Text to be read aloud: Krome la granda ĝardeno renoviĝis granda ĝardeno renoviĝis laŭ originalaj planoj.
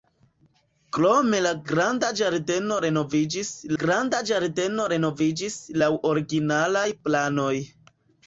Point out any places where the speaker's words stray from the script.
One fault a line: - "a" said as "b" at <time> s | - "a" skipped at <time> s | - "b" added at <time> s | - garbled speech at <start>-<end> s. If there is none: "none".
none